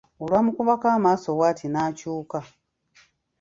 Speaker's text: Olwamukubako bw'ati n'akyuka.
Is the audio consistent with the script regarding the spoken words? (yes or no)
no